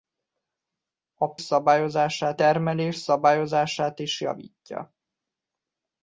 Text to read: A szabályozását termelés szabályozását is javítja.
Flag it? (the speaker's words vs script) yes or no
no